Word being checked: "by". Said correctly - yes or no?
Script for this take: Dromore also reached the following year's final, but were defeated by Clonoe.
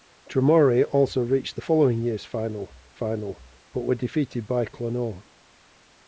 yes